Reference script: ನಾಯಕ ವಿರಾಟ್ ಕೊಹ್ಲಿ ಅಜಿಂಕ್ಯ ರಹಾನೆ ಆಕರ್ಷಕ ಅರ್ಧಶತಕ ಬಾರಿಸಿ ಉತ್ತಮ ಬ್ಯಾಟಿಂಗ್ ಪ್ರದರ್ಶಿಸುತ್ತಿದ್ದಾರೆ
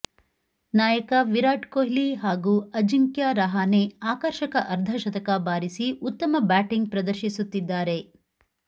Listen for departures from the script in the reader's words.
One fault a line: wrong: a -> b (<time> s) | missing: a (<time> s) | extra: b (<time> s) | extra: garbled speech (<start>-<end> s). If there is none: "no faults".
extra: ಹಾಗೂ (2.1 s)